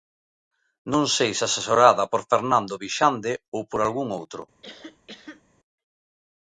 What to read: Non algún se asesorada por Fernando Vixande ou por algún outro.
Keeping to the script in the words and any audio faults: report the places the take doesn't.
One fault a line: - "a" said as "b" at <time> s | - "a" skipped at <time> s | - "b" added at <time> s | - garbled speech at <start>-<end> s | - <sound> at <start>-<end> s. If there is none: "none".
- "algún" said as "sei" at 1.1 s
- cough at 4.6-5.4 s